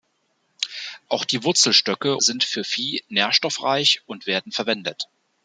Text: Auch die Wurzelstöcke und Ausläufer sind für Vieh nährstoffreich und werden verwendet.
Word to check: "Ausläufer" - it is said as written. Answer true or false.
false